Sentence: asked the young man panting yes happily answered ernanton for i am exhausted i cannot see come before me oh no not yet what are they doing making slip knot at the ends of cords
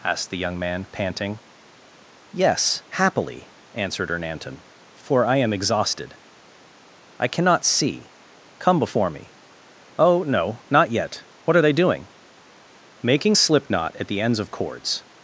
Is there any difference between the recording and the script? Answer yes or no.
no